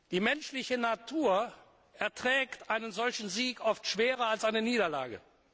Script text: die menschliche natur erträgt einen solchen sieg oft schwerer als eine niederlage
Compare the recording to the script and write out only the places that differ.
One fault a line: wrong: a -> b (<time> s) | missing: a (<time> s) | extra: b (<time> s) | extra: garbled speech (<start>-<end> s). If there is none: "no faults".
no faults